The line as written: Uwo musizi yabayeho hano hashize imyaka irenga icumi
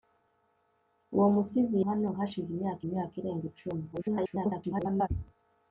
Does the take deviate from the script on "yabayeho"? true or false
true